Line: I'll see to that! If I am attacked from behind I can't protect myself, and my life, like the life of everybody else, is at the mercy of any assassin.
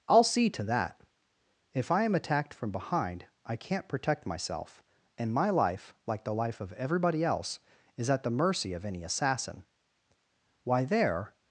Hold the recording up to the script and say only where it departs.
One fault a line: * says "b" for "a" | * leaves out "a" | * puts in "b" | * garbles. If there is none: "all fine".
* puts in "Why there"